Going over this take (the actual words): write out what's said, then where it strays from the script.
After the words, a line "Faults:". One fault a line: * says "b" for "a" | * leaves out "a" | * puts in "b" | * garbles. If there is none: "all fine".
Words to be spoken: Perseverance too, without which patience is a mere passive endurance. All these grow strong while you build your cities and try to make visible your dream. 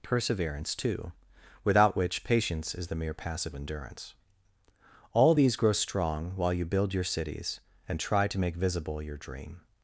Perseverance too, without which patience is the mere passive endurance. All these grow strong while you build your cities and try to make visible your dream.
Faults:
* says "the" for "a"